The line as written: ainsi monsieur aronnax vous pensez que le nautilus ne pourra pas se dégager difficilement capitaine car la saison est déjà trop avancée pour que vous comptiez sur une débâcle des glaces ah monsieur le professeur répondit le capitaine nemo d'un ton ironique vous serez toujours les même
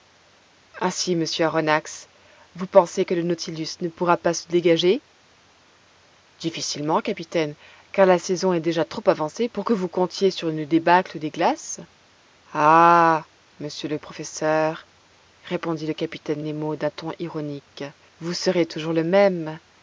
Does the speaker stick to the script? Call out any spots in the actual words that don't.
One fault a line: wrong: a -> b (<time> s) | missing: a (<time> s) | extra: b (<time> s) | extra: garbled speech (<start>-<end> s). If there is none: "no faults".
wrong: les -> le (18.9 s)